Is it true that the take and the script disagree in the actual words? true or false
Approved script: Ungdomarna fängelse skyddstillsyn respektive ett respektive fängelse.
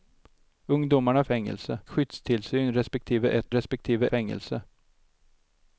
false